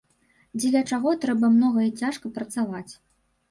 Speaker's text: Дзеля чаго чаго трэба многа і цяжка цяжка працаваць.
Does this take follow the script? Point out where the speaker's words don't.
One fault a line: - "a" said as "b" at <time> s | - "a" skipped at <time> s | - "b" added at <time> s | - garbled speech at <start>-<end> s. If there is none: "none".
- "чаго" skipped at 1.1 s
- "цяжка" skipped at 2.3 s